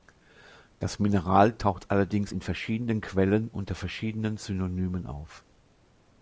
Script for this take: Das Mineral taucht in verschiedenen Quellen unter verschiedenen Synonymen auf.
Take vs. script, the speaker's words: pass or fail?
fail